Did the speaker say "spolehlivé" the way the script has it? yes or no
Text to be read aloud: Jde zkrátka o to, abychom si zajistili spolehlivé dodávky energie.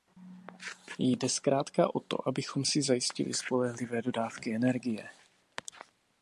yes